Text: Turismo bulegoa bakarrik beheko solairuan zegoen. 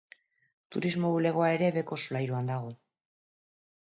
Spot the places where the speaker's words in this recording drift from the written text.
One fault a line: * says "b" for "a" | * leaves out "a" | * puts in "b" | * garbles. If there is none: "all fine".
* says "ere" for "bakarrik"
* says "dago" for "zegoen"